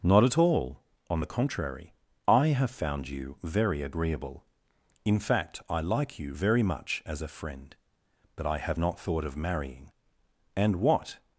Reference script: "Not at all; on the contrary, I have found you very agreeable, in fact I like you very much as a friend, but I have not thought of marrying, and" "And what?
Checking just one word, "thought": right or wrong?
right